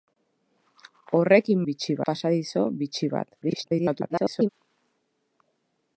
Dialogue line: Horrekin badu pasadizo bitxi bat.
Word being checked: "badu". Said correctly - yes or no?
no